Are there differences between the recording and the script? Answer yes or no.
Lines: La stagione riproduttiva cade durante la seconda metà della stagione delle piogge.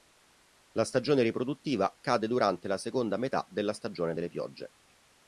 no